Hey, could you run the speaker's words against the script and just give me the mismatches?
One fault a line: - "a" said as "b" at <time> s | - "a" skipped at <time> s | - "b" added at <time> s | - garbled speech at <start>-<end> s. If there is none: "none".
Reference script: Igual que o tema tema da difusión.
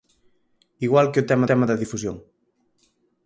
none